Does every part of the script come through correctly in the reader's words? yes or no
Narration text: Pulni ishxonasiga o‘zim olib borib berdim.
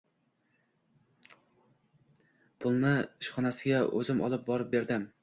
yes